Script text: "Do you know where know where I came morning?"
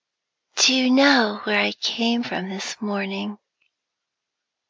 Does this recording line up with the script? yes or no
no